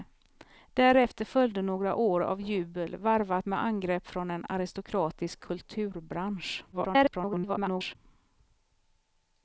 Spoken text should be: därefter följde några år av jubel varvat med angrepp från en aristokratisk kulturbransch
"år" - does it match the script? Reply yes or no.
yes